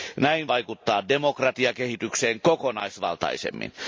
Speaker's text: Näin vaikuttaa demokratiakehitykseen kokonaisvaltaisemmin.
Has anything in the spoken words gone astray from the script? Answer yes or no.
no